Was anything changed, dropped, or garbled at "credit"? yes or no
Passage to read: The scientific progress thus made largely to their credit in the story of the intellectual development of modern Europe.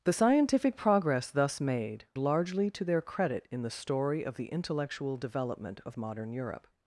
no